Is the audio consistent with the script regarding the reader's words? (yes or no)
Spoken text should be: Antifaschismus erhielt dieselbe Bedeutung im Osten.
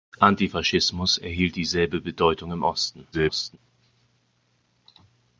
no